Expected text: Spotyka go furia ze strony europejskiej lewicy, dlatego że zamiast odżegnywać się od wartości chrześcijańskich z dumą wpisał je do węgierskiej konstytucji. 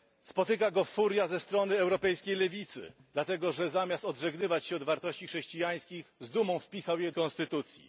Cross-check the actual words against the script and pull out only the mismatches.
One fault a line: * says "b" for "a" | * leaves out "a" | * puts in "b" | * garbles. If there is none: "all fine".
* leaves out "do węgierskiej"